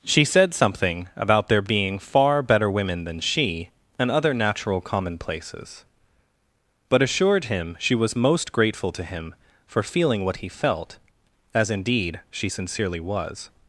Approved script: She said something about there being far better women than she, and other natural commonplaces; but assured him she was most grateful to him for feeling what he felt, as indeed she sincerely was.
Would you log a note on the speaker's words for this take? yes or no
no